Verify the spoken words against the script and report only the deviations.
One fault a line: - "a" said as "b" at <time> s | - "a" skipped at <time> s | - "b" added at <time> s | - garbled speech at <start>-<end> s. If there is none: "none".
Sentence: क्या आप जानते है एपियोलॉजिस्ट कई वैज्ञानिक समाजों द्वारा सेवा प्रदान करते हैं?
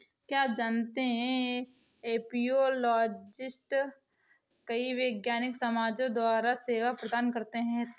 none